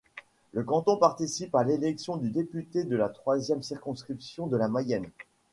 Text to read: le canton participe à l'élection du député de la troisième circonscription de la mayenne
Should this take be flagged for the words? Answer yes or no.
no